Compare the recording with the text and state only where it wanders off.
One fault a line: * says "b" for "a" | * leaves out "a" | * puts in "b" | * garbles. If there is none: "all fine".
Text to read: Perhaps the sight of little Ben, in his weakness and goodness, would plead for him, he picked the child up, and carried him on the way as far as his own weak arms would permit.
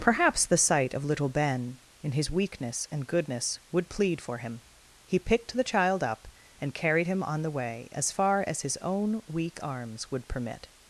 all fine